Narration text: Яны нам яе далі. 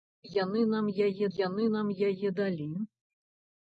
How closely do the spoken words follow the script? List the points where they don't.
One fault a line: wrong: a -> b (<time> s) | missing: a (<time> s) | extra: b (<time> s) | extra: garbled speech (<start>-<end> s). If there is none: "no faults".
extra: яны нам яе (1.4 s)